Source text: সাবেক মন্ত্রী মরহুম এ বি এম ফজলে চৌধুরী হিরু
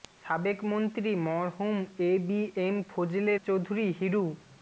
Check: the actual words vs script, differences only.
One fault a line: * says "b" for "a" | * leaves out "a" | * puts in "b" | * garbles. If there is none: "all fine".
all fine